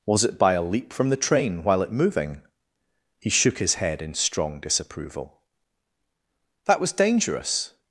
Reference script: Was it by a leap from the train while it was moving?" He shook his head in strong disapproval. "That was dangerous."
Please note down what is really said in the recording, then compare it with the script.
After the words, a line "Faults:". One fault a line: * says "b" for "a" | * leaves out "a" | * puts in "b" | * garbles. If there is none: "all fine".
Was it by a leap from the train while it moving?" He shook his head in strong disapproval. "That was dangerous."
Faults:
* leaves out "was"